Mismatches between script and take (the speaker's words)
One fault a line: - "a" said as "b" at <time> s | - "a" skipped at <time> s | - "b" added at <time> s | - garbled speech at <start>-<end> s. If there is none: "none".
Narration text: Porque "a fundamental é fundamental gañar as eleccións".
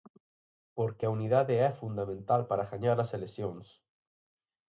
- "fundamental" said as "unidade" at 1.2 s
- "para" added at 2.5 s